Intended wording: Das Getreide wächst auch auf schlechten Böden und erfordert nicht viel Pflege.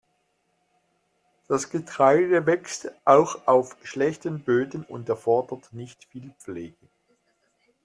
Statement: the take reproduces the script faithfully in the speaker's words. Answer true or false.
true